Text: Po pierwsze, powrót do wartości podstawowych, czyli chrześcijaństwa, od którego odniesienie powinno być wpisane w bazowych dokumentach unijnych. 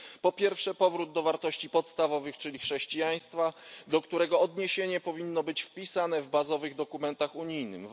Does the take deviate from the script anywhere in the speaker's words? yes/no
yes